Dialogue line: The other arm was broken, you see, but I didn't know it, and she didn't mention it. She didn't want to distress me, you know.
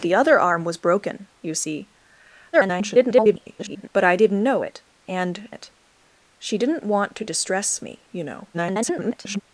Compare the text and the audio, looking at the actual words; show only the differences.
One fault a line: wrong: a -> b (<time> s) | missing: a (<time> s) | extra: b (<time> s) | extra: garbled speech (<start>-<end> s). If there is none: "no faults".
extra: garbled speech (2.5-3.9 s)
missing: she didn't mention (5.5 s)
extra: garbled speech (8.5-9.4 s)